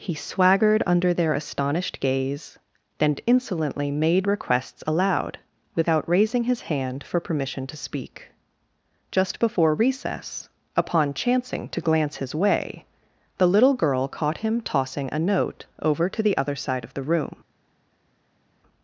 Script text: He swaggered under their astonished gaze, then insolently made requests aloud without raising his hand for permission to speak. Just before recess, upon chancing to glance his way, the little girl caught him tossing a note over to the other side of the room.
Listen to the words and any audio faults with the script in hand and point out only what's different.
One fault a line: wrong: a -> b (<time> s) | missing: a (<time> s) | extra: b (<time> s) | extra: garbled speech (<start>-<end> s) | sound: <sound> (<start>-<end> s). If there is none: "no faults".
no faults